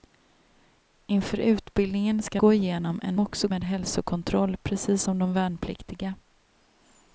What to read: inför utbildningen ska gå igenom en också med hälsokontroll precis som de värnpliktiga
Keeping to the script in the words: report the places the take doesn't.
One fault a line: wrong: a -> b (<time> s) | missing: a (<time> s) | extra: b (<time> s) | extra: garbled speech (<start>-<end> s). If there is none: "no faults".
no faults